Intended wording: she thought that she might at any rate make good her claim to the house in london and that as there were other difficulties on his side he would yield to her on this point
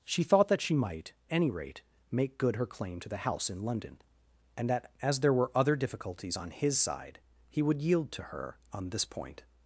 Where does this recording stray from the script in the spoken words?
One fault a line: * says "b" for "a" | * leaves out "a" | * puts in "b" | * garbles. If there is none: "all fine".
* leaves out "at"